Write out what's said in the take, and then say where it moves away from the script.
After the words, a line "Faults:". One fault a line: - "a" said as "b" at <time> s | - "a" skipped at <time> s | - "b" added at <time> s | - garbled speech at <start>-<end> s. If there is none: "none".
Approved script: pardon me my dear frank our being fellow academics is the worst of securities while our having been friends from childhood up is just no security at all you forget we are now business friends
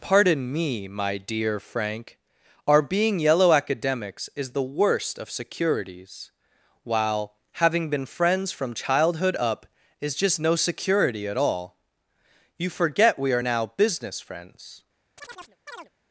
pardon me my dear frank our being yellow academics is the worst of securities while having been friends from childhood up is just no security at all you forget we are now business friends
Faults:
- "fellow" said as "yellow" at 3.2 s
- "our" skipped at 7.4 s